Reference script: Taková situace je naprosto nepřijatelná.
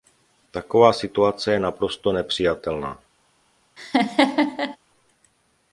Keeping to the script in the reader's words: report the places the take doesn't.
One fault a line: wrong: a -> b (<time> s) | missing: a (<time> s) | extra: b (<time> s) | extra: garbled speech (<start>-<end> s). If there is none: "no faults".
no faults